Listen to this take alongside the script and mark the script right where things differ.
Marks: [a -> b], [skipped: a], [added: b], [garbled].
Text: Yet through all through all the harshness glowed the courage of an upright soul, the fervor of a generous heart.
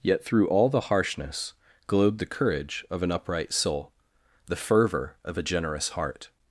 Yet through all [skipped: through all] the harshness glowed the courage of an upright soul, the fervor of a generous heart.